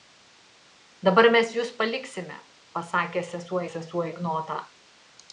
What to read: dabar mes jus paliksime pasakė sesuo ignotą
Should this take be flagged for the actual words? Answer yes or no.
yes